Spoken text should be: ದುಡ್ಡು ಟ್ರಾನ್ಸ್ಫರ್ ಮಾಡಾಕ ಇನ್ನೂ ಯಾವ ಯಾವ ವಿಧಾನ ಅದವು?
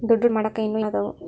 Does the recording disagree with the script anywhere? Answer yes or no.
yes